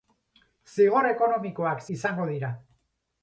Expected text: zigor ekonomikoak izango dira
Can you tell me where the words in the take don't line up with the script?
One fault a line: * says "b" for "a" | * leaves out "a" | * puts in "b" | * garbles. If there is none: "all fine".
all fine